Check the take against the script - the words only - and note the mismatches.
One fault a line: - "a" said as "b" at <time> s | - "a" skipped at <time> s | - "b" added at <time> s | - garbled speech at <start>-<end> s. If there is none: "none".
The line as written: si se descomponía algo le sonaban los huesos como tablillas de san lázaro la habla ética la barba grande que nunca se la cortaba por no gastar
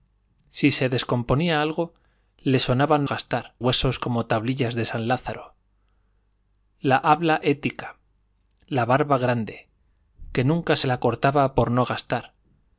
- "los" said as "gastar" at 3.1 s